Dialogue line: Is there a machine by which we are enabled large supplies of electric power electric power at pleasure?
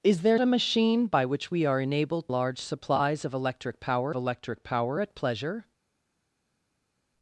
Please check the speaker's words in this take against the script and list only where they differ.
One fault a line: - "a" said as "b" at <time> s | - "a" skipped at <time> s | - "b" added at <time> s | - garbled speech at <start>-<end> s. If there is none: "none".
none